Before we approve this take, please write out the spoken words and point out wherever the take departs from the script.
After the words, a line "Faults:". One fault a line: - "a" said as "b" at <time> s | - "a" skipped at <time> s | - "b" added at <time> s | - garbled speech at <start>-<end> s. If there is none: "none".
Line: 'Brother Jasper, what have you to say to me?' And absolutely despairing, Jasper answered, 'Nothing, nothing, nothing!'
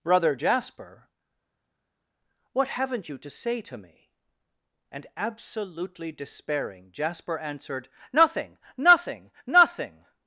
'Brother Jasper, what haven't you to say to me?' And absolutely despairing, Jasper answered, 'Nothing, nothing, nothing!'
Faults:
- "have" said as "haven't" at 2.7 s